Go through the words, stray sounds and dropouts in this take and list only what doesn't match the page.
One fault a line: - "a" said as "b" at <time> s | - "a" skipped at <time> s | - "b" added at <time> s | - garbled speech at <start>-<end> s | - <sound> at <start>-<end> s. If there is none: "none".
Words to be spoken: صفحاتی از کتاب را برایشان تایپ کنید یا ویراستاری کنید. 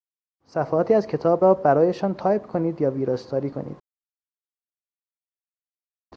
none